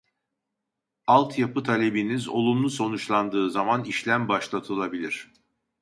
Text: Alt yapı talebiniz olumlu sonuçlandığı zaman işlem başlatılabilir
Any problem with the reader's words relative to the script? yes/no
no